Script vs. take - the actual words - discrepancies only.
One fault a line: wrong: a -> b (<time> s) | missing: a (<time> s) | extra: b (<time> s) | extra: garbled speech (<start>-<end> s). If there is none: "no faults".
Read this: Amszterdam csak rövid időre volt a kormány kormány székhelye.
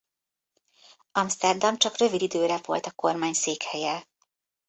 missing: kormány (3.3 s)